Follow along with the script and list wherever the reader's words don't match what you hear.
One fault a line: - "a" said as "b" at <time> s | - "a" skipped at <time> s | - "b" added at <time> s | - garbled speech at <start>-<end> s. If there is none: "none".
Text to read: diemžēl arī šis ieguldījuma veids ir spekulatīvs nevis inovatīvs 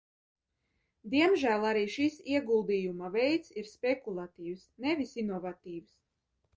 none